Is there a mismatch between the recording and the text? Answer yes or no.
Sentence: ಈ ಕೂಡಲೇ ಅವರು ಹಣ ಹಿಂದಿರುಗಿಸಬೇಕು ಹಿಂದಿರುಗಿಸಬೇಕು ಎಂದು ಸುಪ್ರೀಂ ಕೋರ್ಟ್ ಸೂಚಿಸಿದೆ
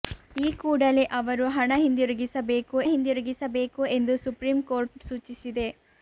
no